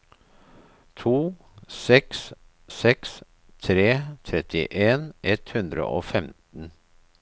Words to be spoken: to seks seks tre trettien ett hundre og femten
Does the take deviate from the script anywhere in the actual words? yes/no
no